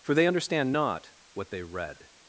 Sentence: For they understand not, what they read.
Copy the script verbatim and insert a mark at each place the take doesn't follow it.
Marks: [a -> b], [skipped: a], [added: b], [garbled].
For they understand not, what they read.